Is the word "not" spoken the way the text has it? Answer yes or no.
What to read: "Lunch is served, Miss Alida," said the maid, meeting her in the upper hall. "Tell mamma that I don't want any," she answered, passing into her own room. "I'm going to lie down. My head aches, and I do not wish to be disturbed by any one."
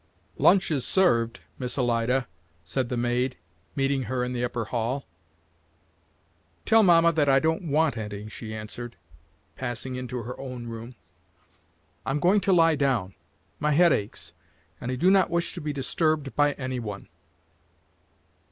yes